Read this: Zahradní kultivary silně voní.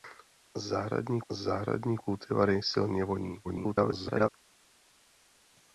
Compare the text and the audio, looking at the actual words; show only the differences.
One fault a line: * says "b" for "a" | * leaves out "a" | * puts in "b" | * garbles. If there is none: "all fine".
* puts in "zahradní"
* garbles